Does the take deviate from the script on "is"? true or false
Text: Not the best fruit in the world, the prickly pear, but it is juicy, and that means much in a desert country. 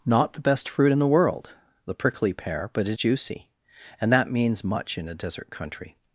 true